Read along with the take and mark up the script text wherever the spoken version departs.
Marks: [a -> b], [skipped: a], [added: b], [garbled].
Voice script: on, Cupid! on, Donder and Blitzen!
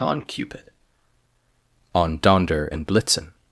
on, Cupid! on, Donder and Blitzen!